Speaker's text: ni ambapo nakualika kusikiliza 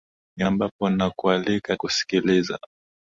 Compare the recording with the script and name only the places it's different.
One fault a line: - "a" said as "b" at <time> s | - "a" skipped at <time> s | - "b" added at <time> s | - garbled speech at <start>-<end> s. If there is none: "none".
none